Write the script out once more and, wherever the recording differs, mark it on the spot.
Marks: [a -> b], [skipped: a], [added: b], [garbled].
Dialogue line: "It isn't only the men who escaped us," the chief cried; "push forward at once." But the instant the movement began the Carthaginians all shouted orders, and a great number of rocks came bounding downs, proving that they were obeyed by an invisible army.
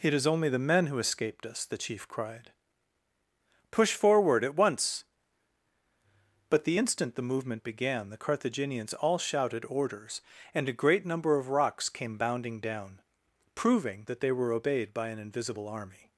"It [isn't -> is] only the men who escaped us," the chief cried; "push forward at once." But the instant the movement began the Carthaginians all shouted orders, and a great number of rocks came bounding [downs, -> down] proving that they were obeyed by an invisible army.